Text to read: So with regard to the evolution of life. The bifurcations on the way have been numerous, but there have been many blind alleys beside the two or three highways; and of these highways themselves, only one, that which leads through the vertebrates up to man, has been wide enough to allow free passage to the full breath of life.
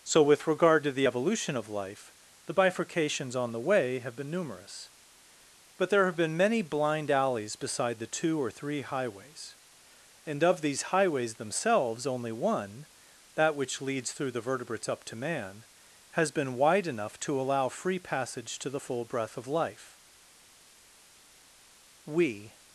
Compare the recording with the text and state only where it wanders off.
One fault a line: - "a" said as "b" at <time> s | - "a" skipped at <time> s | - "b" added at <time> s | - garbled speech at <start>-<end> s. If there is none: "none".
- "We" added at 22.1 s